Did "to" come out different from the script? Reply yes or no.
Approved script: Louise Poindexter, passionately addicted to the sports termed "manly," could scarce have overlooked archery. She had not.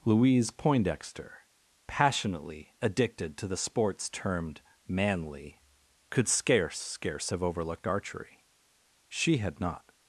no